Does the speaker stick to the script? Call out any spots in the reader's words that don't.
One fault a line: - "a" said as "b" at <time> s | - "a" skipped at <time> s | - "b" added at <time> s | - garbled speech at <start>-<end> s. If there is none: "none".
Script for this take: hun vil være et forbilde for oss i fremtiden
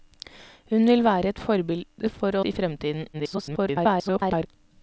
- "oss" skipped at 2.4 s
- garbled speech at 3.1-4.5 s